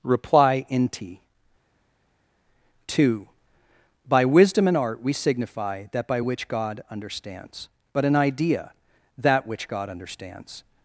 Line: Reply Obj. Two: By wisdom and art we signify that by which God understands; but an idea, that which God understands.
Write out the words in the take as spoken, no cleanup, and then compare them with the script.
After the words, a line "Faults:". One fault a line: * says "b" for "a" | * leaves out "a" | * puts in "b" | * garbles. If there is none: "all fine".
Reply Inti. Two: By wisdom and art we signify that by which God understands; but an idea, that which God understands.
Faults:
* says "Inti" for "Obj"